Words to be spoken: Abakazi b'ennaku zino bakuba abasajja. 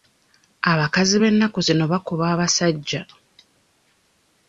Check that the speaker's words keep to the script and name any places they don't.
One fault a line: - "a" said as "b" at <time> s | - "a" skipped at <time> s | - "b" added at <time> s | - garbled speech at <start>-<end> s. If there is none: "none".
none